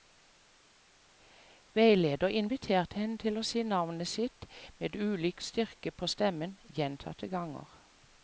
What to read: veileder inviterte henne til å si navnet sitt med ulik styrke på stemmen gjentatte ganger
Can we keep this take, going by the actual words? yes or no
yes